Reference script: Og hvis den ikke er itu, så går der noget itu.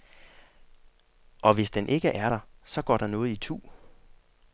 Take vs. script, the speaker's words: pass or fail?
fail